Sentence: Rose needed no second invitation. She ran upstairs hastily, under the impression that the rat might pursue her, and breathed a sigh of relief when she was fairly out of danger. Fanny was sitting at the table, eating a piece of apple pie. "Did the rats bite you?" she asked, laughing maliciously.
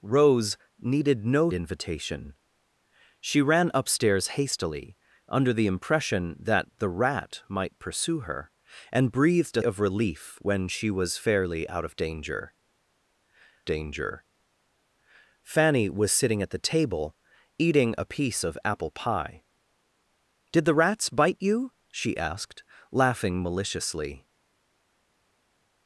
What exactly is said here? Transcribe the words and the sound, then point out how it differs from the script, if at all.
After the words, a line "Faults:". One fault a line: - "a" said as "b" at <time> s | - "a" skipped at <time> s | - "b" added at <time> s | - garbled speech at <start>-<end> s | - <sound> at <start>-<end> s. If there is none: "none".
Rose needed no invitation. She ran upstairs hastily, under the impression that the rat might pursue her, and breathed a of relief when she was fairly out of danger danger. Fanny was sitting at the table, eating a piece of apple pie. "Did the rats bite you?" she asked, laughing maliciously.
Faults:
- "second" skipped at 1.5 s
- "sigh" skipped at 9.6 s
- "danger" added at 13.6 s